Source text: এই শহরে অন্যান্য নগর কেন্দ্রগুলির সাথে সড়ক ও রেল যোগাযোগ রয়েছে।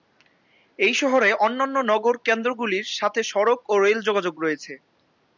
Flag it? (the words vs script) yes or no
no